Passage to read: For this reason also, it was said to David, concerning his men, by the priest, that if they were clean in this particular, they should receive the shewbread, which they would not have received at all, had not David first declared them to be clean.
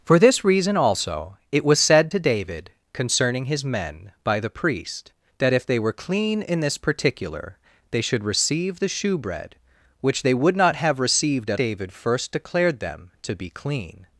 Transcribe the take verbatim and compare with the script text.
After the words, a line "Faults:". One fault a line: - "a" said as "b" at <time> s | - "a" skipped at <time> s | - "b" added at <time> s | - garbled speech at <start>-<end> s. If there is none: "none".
For this reason also, it was said to David, concerning his men, by the priest, that if they were clean in this particular, they should receive the shewbread, which they would not have received at David first declared them to be clean.
Faults:
- "all had not" skipped at 11.6 s